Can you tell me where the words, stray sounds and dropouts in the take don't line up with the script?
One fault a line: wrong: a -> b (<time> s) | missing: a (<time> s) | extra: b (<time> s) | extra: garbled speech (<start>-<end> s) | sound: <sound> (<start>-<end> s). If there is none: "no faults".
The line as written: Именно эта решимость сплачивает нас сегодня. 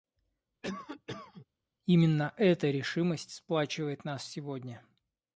sound: cough (0.6-1.5 s)